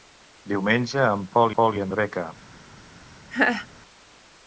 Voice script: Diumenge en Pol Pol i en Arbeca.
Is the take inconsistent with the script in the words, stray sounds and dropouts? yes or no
yes